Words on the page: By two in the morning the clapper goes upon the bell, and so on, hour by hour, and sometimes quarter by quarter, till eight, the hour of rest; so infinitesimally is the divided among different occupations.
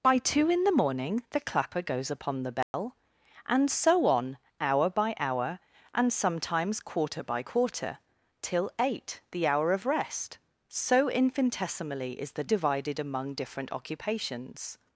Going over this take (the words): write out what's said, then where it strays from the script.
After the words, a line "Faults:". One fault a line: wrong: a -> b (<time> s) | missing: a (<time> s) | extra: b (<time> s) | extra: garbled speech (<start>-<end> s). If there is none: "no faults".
By two in the morning the clapper goes upon the bell, and so on, hour by hour, and sometimes quarter by quarter, till eight, the hour of rest; so infinitesimally is the divided among different occupations.
Faults:
no faults